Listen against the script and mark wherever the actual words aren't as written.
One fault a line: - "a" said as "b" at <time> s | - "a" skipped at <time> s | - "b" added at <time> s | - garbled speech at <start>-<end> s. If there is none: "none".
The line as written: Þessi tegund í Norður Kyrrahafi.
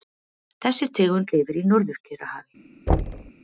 - "lifir" added at 1.4 s